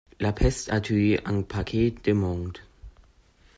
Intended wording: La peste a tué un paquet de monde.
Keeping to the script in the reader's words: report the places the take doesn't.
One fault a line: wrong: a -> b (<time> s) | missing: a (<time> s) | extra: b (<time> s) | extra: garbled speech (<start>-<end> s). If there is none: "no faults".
no faults